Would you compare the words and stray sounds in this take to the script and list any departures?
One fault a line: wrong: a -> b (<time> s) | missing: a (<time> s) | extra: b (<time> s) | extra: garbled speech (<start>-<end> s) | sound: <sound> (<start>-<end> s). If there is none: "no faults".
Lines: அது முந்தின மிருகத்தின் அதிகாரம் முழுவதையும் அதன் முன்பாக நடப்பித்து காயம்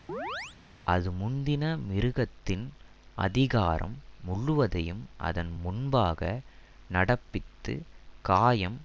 sound: chirp (0.1-0.6 s)